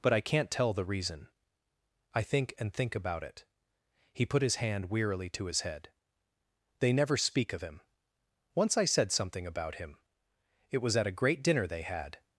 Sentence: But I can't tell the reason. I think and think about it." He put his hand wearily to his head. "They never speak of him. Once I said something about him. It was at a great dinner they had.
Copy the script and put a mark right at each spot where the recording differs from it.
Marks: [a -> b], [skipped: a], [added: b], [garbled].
But I can't tell the reason. I think and think about it." He put his hand wearily to his head. "They never speak of him. Once I said something about him. It was at a great dinner they had.